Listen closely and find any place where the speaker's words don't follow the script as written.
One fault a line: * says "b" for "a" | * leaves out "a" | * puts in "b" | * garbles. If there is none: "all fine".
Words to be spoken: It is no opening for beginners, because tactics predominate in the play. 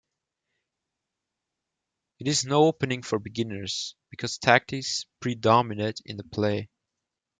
all fine